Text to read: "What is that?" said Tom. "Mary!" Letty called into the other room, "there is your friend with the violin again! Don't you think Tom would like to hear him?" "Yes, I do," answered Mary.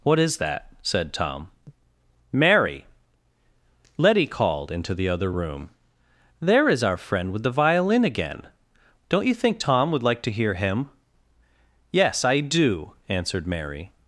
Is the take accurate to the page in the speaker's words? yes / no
no